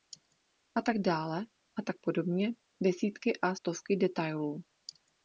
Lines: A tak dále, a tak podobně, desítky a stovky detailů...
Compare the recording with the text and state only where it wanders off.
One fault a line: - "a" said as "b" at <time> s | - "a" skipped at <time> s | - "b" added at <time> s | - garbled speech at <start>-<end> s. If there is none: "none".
none